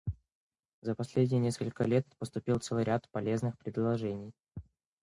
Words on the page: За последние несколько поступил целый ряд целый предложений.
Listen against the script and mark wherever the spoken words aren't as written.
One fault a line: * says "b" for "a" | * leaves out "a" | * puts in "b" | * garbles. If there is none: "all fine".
* puts in "лет"
* says "полезных" for "целый"